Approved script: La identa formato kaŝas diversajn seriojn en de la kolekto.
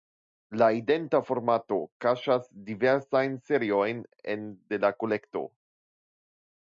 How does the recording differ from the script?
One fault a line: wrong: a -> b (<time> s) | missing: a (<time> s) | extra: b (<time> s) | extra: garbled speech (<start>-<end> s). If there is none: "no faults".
no faults